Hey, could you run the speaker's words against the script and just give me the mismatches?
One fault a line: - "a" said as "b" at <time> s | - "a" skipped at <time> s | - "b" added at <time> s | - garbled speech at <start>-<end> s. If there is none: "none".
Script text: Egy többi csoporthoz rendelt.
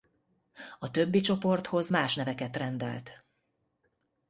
- "Egy" said as "A" at 0.8 s
- "más neveket" added at 1.9 s